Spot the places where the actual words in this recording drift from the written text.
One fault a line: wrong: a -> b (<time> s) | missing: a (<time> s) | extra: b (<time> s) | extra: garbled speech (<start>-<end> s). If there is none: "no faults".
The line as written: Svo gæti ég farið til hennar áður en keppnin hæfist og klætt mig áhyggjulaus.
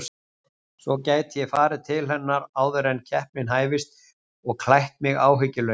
no faults